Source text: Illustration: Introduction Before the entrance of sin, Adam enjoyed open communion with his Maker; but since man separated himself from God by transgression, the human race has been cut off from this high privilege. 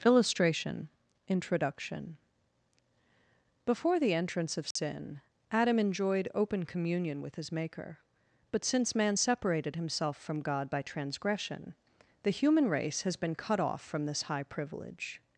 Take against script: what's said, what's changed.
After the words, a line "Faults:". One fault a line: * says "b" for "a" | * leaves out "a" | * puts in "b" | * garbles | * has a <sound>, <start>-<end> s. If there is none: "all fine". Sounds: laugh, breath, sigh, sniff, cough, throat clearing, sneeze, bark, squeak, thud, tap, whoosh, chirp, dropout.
Illustration: Introduction Before the entrance of sin, Adam enjoyed open communion with his Maker; but since man separated himself from God by transgression, the human race has been cut off from this high privilege.
Faults:
* has a dropout, 4.7-4.8 s